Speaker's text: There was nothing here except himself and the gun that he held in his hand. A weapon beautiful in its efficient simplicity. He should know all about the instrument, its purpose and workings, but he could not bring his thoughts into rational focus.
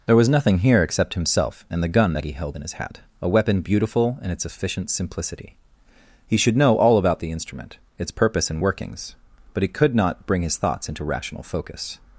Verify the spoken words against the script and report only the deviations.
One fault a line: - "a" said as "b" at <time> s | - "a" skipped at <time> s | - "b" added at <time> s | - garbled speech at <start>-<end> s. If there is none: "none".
- "hand" said as "hat" at 2.7 s